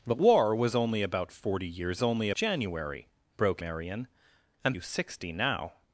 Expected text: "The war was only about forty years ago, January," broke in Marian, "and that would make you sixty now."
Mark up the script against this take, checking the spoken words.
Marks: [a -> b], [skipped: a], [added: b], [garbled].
"The war was only about forty years [ago, -> only] January," broke [skipped: in] Marian, "and [skipped: that would make] you sixty now."